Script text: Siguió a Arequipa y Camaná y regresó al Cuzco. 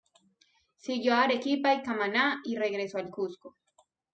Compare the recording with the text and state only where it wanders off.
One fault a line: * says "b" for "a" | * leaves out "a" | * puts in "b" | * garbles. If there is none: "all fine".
all fine